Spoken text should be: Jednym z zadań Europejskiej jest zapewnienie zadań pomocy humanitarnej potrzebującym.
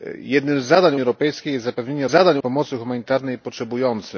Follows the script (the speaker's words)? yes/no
yes